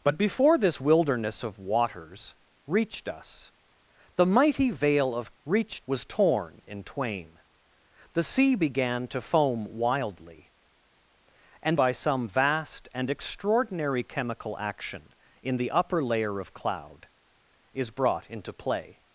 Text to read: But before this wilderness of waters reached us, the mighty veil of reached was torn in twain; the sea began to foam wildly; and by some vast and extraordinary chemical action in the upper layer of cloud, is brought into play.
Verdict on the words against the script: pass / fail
pass